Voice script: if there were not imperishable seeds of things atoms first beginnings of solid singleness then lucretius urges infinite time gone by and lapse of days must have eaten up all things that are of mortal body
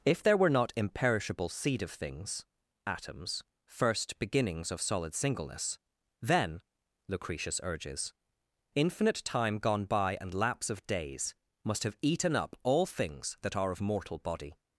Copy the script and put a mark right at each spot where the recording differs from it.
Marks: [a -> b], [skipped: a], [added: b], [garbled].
if there were not imperishable [seeds -> seed] of things atoms first beginnings of solid singleness then lucretius urges infinite time gone by and lapse of days must have eaten up all things that are of mortal body